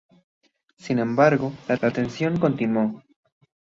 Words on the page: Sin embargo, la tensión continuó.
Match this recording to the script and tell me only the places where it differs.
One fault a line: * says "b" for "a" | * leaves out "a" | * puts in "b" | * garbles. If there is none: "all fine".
* puts in "la"